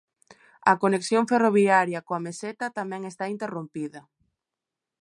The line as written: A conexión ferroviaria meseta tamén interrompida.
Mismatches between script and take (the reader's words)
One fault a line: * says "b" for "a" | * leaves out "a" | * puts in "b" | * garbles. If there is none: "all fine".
* puts in "coa"
* puts in "está"